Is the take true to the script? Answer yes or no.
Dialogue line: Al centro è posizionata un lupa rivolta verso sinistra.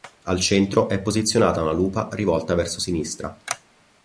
no